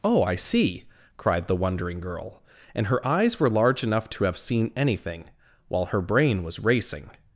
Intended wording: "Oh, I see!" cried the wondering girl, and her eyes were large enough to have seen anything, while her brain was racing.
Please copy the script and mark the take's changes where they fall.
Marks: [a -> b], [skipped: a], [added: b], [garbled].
"Oh, I see!" cried the wondering girl, and her eyes were large enough to have seen anything, while her brain was racing.